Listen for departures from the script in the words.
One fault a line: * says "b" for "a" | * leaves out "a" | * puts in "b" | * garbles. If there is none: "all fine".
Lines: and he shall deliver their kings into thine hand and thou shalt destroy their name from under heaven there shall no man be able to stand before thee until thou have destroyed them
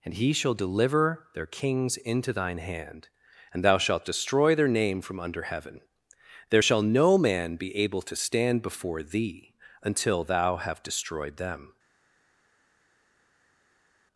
all fine